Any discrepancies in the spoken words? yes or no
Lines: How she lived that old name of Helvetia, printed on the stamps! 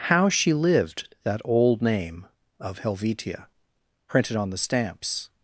no